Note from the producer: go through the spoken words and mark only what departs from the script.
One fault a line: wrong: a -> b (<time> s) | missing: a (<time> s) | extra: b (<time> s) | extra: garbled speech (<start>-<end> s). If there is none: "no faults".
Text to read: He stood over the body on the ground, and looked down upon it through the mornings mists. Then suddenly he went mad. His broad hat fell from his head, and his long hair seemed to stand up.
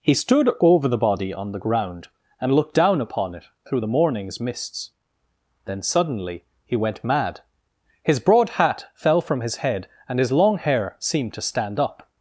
no faults